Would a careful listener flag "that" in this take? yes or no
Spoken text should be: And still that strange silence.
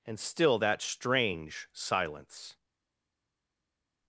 no